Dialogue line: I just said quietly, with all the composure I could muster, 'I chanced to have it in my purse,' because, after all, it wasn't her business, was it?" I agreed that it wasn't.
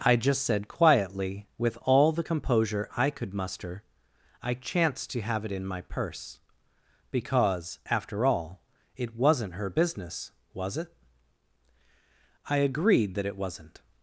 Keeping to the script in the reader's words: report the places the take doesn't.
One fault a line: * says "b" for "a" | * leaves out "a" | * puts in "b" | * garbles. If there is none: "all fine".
all fine